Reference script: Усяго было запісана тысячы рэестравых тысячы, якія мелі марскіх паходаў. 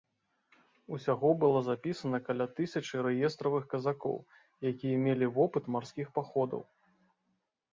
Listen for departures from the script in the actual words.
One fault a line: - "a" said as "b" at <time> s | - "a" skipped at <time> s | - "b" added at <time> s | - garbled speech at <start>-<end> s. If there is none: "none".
- "каля" added at 2.3 s
- "тысячы" said as "казакоў" at 3.8 s
- "вопыт" added at 5.4 s